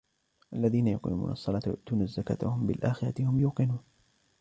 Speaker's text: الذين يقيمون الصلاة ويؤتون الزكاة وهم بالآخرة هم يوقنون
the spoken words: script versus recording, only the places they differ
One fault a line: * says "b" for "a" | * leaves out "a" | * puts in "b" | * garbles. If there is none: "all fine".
all fine